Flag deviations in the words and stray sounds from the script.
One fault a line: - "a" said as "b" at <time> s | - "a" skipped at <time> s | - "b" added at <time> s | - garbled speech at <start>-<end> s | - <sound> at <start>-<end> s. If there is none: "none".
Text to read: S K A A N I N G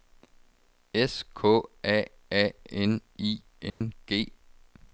- dropout at 3.7-3.8 s